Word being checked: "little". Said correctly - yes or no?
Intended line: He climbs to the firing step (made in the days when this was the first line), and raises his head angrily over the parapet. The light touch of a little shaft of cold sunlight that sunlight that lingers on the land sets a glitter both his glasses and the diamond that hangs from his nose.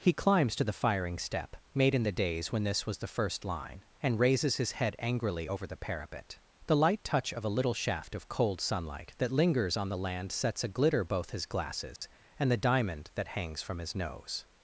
yes